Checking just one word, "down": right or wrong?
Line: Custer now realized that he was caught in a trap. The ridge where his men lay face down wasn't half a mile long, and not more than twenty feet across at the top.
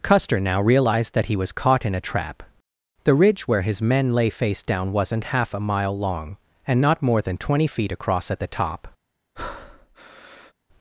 right